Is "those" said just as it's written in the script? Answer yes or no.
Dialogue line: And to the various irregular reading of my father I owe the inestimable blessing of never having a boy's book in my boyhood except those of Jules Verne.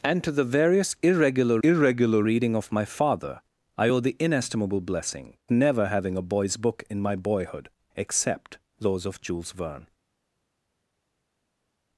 yes